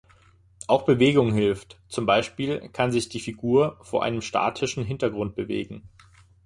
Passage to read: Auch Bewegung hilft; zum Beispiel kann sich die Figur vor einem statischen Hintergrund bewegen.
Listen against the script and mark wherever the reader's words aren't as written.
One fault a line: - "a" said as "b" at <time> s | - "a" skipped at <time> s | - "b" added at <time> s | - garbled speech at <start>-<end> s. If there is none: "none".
none